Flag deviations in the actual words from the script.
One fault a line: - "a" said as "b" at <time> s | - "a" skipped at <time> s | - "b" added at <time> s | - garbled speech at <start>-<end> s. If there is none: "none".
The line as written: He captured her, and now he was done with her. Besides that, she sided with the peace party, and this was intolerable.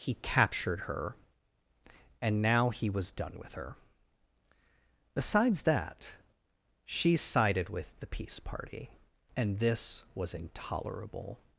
none